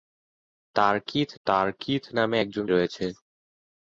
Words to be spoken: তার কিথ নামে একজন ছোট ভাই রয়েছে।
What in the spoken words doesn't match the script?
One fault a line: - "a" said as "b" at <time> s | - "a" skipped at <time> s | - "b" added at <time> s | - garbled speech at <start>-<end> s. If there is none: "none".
- "তার কিথ" added at 1.5 s
- "ছোট ভাই" skipped at 2.6 s